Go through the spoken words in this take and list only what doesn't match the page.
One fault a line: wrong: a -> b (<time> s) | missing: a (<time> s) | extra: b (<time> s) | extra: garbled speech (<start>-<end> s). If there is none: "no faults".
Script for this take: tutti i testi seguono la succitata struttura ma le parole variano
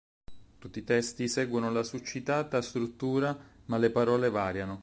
no faults